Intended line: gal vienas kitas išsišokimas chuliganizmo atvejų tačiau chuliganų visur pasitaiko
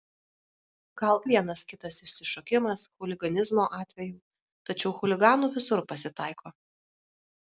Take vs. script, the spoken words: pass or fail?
pass